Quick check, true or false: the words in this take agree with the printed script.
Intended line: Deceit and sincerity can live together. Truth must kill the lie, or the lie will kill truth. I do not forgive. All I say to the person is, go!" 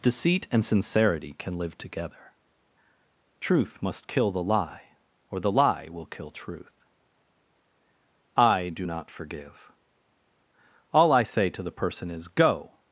true